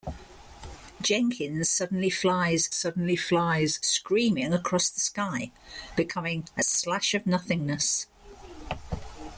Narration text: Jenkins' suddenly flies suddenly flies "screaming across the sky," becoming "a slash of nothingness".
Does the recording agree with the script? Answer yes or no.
yes